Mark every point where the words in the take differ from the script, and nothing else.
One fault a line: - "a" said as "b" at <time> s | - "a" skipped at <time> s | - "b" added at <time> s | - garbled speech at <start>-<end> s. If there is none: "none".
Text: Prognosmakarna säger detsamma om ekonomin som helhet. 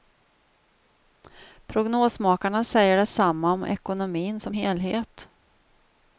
none